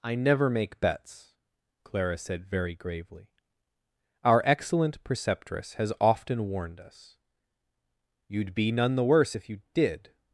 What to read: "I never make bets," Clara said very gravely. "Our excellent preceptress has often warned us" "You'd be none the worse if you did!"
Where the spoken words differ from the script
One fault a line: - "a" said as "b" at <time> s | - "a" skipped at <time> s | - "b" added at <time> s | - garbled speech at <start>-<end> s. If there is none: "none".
none